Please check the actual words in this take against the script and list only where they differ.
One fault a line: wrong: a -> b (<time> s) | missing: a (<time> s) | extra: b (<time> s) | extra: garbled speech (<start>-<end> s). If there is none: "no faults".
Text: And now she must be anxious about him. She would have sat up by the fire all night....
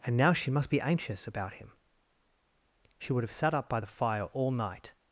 no faults